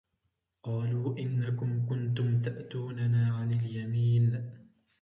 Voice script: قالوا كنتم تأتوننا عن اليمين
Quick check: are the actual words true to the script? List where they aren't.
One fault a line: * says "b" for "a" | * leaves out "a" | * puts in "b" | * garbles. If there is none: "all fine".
* puts in "إنكم"